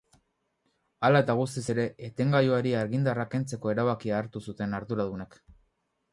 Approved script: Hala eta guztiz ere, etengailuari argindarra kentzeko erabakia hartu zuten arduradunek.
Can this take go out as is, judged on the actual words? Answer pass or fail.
pass